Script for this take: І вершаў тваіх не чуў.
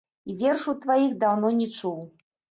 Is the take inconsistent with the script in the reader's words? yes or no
yes